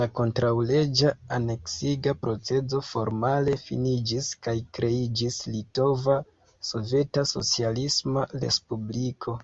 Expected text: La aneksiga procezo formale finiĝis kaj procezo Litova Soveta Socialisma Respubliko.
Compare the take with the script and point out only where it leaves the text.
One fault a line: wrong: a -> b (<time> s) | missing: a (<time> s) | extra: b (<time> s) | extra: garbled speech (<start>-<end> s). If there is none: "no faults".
extra: kontraŭleĝa (0.2 s)
wrong: procezo -> kreiĝis (4.8 s)